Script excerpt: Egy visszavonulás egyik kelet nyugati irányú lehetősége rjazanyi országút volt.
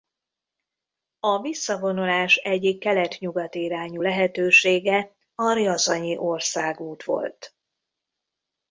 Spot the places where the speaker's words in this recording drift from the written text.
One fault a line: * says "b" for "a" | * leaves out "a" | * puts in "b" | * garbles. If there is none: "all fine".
* says "A" for "Egy"
* puts in "a"